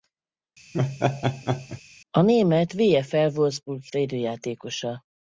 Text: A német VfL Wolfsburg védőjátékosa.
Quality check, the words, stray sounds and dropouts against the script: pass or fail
fail